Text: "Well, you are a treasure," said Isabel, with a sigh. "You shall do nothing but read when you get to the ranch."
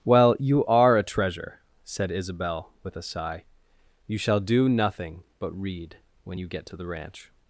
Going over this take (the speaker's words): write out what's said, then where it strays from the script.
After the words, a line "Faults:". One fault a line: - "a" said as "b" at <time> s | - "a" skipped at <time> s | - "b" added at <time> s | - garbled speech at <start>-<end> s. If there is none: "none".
"Well, you are a treasure," said Isabel, with a sigh. "You shall do nothing but read when you get to the ranch."
Faults:
none